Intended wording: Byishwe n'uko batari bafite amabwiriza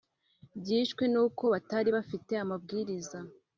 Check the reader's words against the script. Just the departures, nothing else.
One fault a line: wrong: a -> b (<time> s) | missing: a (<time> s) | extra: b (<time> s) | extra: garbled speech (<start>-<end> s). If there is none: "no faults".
no faults